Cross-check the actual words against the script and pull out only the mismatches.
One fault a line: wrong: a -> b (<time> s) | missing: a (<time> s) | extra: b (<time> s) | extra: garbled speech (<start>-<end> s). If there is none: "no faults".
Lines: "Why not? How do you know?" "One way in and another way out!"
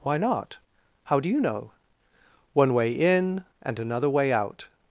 no faults